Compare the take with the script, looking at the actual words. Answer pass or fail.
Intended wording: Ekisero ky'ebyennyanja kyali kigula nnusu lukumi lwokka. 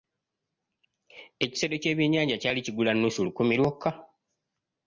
pass